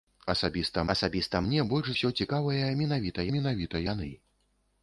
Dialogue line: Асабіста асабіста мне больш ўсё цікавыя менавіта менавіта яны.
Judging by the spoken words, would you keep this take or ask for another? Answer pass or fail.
pass